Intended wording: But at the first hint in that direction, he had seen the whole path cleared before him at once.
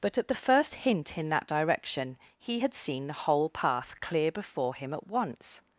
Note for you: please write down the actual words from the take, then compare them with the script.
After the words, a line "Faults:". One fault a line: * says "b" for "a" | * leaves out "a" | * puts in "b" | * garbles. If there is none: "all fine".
But at the first hint in that direction, he had seen the whole path clear before him at once.
Faults:
* says "clear" for "cleared"